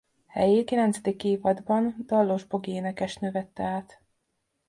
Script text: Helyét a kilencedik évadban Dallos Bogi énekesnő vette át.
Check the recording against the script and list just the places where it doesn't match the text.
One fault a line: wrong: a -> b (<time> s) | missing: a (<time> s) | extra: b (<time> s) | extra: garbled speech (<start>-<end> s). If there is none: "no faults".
missing: a (0.7 s)